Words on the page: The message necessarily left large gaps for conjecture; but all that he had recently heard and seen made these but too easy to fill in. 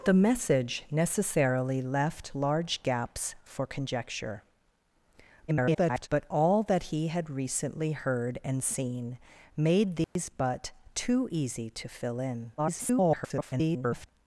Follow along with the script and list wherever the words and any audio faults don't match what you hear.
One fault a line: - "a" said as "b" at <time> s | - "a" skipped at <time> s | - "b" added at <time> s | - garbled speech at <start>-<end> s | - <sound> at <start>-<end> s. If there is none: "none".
- garbled speech at 5.5-6.1 s
- dropout at 10.0-10.2 s
- garbled speech at 12.6-14.1 s